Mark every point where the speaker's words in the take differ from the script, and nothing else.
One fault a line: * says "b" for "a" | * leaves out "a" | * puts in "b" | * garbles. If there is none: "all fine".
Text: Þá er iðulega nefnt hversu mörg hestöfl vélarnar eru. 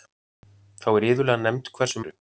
* leaves out "mörg hestöfl vélarnar"